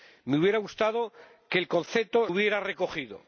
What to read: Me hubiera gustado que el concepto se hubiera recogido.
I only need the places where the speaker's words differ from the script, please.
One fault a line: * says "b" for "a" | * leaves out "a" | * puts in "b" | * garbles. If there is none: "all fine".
* leaves out "se"